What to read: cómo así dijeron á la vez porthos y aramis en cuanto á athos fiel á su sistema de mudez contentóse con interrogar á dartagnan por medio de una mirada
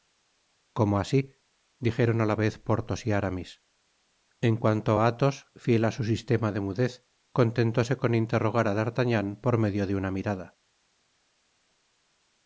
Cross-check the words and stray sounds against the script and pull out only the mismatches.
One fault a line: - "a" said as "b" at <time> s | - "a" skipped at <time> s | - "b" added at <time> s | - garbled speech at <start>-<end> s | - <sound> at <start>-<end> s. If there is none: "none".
none